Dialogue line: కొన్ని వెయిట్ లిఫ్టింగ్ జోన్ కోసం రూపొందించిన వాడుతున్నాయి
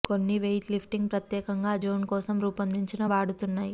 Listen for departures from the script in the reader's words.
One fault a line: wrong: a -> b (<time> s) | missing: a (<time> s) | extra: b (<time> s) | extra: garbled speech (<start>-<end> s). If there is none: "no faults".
extra: ప్రత్యేకంగా ఆ (1.1 s)